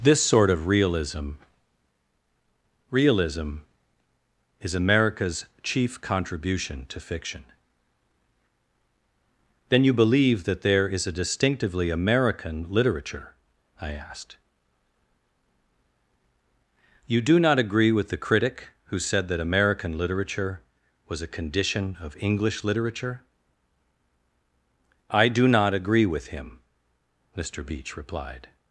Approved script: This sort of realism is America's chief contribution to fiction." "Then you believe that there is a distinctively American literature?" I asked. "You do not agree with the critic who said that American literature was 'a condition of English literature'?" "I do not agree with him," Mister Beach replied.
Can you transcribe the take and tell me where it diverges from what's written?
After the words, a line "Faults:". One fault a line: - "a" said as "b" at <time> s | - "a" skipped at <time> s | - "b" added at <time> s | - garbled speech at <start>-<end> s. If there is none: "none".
This sort of realism realism is America's chief contribution to fiction." "Then you believe that there is a distinctively American literature?" I asked. "You do not agree with the critic who said that American literature was 'a condition of English literature'?" "I do not agree with him," Mister Beach replied.
Faults:
- "realism" added at 2.9 s